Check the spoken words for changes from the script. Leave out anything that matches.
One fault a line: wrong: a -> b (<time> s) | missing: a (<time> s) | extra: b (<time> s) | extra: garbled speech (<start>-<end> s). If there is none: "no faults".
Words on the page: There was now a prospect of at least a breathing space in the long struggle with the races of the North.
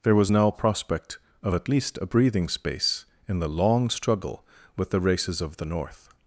missing: a (0.5 s)